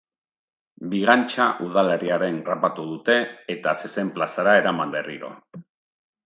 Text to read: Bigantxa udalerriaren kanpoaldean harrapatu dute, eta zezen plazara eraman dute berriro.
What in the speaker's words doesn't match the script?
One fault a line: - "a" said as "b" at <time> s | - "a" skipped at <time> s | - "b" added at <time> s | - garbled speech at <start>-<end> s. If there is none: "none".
- "kanpoaldean" skipped at 2.4 s
- "dute" skipped at 5.0 s